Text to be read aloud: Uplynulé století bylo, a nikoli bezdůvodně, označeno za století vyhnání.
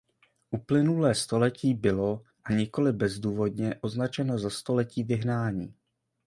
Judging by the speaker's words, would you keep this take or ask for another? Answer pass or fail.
pass